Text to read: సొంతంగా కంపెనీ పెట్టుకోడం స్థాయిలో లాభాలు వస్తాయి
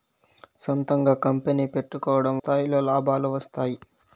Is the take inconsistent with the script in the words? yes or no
no